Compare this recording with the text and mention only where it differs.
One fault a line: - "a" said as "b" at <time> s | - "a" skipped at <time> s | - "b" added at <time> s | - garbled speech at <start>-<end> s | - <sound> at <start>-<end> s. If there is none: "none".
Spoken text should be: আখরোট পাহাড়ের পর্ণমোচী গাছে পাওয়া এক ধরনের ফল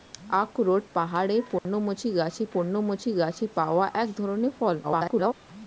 - dropout at 1.6-1.7 s
- "পর্ণমোচী গাছে" added at 2.5 s
- garbled speech at 4.8-5.3 s